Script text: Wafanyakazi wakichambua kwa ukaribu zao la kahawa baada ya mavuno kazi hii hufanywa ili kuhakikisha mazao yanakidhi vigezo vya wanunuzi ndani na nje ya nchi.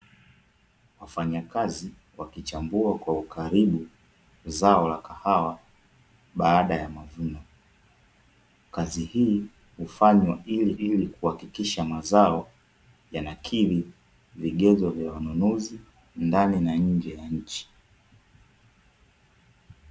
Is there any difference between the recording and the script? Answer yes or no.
yes